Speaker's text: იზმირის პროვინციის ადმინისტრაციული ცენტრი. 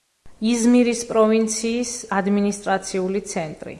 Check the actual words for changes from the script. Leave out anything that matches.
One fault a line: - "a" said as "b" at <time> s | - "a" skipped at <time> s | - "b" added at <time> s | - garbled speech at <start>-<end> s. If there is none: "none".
none